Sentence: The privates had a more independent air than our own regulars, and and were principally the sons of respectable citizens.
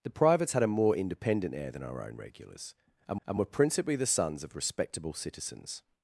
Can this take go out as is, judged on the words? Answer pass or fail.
pass